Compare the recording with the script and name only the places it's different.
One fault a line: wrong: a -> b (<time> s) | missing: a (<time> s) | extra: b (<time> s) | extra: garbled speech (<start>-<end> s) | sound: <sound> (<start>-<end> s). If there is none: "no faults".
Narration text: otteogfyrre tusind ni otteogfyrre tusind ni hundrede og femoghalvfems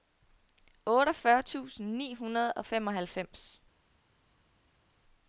missing: otteogfyrre tusind ni (2.1 s)